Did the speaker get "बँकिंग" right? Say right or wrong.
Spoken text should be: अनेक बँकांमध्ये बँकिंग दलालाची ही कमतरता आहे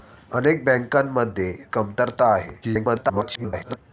wrong